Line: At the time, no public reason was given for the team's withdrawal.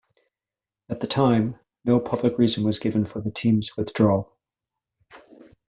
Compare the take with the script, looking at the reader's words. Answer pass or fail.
pass